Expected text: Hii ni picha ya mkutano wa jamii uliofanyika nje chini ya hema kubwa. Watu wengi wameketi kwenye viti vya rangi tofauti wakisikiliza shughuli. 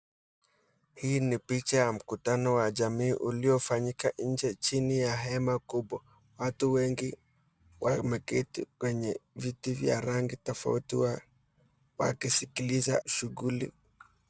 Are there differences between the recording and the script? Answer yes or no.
no